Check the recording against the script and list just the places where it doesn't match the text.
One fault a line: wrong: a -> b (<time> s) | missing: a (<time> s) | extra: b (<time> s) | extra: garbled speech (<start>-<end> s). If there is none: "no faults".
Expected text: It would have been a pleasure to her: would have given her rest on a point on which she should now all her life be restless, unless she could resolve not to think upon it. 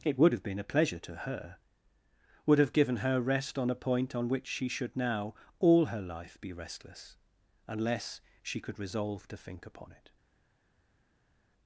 missing: not (9.3 s)